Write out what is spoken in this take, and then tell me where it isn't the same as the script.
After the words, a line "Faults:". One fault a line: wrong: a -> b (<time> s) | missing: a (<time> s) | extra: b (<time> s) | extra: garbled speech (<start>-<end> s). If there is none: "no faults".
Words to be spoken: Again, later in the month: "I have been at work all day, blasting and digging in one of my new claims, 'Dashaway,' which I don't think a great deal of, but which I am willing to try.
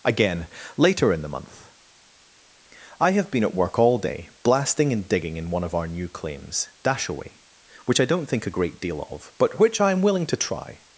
Again, later in the month: "I have been at work all day, blasting and digging in one of our new claims, 'Dashaway,' which I don't think a great deal of, but which I am willing to try.
Faults:
wrong: my -> our (5.8 s)